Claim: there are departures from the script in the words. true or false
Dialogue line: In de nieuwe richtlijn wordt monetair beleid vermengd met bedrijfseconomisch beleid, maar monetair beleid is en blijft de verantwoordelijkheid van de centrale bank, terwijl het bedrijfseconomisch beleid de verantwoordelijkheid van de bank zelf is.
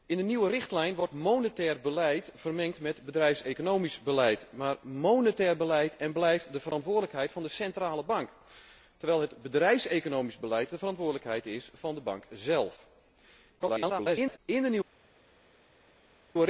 true